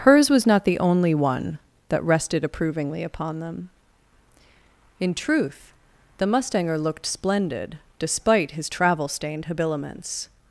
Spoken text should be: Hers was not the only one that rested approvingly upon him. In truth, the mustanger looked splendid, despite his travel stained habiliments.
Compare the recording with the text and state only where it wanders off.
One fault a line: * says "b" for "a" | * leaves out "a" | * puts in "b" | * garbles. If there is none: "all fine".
* says "them" for "him"